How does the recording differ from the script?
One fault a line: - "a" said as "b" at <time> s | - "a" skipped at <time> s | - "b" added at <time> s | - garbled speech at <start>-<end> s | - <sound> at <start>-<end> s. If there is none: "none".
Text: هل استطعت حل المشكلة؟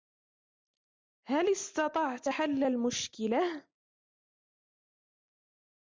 none